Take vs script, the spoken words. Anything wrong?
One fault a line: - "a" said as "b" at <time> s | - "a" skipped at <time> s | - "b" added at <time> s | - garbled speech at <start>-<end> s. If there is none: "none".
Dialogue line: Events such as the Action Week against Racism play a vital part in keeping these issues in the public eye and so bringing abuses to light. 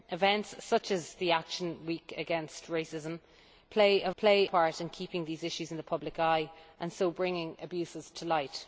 - "vital" said as "play" at 4.2 s